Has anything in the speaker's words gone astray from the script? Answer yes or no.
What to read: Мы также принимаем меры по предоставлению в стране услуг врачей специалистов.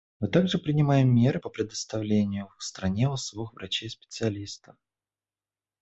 no